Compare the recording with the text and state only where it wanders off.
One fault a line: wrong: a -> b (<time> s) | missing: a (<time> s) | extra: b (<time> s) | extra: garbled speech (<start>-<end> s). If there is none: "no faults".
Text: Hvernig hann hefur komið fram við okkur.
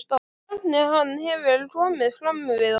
no faults